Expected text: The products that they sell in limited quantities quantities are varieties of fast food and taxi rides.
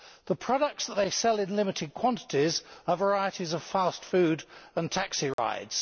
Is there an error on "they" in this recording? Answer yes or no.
no